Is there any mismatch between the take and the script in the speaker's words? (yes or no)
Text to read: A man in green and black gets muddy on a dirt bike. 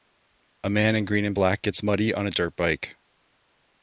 no